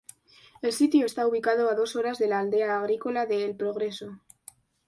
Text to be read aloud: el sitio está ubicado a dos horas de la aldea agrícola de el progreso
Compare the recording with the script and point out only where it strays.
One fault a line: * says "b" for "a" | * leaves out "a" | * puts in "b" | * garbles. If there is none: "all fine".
all fine